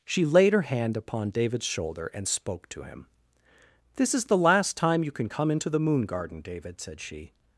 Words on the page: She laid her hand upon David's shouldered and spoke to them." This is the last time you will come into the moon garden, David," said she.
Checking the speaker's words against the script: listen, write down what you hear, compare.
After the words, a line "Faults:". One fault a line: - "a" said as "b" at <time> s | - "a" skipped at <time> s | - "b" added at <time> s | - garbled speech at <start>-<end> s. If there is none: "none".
She laid her hand upon David's shoulder and spoke to him." This is the last time you can come into the moon garden, David," said she.
Faults:
- "shouldered" said as "shoulder" at 1.6 s
- "them" said as "him" at 2.8 s
- "will" said as "can" at 5.1 s